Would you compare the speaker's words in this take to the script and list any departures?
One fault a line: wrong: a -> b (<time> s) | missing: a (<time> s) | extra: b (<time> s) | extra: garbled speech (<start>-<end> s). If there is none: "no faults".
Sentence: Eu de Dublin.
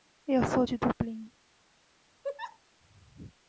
extra: sou (0.5 s)